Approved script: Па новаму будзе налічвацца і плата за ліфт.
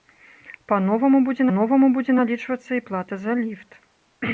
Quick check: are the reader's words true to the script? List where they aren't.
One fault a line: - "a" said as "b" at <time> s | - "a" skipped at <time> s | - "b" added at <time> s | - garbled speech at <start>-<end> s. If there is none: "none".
- "новаму будзе" added at 1.6 s